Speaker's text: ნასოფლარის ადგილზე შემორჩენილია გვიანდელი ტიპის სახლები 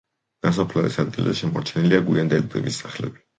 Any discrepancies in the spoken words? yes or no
no